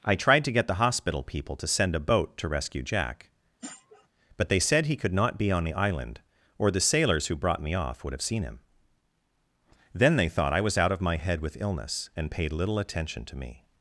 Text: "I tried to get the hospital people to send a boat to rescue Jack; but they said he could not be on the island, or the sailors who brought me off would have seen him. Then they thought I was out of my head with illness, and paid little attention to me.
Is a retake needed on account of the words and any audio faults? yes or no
yes